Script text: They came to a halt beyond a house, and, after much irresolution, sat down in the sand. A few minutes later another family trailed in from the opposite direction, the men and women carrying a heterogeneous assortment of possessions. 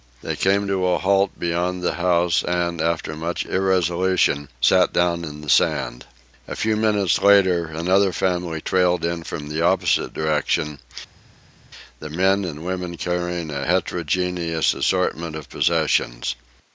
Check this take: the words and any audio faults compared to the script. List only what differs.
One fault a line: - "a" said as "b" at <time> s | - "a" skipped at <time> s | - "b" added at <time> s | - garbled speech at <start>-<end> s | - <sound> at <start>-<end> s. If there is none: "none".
- "a" said as "the" at 1.8 s